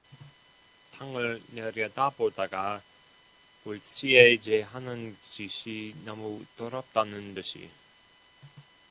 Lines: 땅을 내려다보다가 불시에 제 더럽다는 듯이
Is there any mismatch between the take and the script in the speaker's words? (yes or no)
yes